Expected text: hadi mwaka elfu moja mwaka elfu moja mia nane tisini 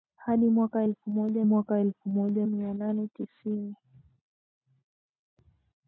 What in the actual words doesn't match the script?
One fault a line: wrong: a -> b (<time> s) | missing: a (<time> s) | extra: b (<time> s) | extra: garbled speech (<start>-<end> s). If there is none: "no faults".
no faults